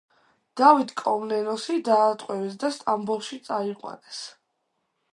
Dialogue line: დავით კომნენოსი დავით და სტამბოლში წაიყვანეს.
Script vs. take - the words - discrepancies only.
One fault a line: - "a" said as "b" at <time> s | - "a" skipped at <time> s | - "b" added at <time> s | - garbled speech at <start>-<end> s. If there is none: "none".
- "დავით" said as "დაატყვევეს" at 1.9 s